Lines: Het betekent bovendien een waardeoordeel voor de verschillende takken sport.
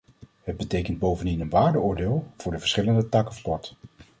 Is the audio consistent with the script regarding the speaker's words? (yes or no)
yes